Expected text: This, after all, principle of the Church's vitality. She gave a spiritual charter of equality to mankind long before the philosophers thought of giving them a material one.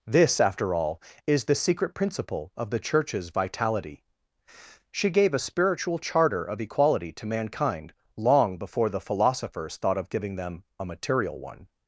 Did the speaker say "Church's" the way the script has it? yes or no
yes